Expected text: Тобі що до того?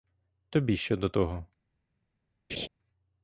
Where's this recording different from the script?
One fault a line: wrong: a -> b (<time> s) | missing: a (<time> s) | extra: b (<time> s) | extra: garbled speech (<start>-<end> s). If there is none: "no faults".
no faults